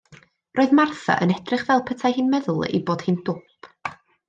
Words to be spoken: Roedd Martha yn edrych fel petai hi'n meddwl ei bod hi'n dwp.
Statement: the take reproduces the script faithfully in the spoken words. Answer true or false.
true